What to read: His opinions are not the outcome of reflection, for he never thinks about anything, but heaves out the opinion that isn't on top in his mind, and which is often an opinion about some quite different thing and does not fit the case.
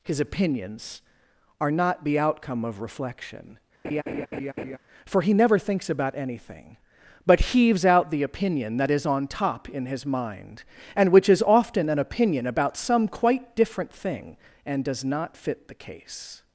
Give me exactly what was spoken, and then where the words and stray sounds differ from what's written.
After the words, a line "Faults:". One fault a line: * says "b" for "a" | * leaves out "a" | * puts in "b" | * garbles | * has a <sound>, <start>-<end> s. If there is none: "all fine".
His opinions are not the outcome of reflection, for he never thinks about anything, but heaves out the opinion that is on top in his mind, and which is often an opinion about some quite different thing and does not fit the case.
Faults:
* has a laugh, 3.8-4.8 s
* says "is" for "isn't"